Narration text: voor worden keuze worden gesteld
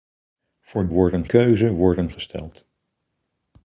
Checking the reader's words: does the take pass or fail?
pass